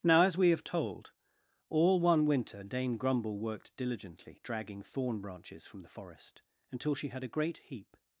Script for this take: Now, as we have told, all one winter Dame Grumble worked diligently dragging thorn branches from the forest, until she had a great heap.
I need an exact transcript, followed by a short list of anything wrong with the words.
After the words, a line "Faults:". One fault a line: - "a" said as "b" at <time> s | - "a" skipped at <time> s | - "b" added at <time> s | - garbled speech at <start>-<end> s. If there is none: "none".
Now, as we have told, all one winter Dame Grumble worked diligently dragging thorn branches from the forest, until she had a great heap.
Faults:
none